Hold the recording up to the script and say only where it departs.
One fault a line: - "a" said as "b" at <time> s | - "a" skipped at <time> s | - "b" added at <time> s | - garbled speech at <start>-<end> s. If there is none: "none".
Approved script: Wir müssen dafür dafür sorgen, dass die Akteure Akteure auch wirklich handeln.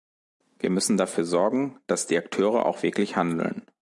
- "dafür" skipped at 1.2 s
- "Akteure" skipped at 2.6 s